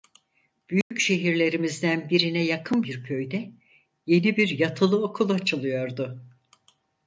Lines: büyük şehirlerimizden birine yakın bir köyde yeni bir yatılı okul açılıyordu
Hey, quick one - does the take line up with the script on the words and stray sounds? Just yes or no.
no